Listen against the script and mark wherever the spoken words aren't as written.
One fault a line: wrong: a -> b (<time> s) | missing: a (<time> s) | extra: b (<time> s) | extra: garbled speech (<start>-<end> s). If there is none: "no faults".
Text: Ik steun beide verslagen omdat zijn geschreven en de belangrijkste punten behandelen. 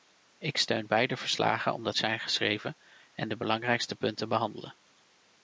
no faults